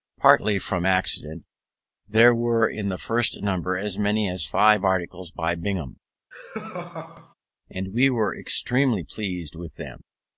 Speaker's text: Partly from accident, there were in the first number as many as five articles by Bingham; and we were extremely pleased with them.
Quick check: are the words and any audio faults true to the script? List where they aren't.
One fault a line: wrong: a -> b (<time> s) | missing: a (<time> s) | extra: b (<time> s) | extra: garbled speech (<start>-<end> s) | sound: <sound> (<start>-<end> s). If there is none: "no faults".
sound: laugh (6.3-7.3 s)